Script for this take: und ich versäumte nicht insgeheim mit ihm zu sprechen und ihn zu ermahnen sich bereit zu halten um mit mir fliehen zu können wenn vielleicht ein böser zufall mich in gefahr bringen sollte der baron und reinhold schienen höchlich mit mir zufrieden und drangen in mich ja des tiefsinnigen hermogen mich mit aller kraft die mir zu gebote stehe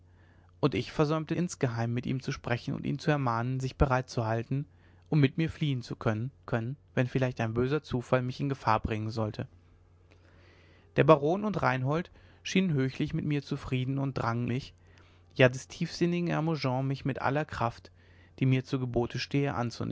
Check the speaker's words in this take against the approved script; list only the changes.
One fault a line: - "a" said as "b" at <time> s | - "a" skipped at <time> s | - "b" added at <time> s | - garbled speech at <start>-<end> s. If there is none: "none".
- "nicht" skipped at 1.4 s
- "können" added at 6.4 s
- "in" skipped at 14.5 s